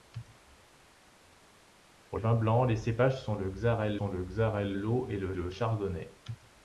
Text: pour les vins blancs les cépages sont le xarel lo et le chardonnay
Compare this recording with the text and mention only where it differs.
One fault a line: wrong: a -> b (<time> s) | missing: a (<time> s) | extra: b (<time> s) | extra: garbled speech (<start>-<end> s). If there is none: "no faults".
missing: les (2.2 s)
extra: sont le xarel (4.0 s)
extra: le (5.3 s)